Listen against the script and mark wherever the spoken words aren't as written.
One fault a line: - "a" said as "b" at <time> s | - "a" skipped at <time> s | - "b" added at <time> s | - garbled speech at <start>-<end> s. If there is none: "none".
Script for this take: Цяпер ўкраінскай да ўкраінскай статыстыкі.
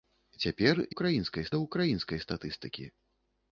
none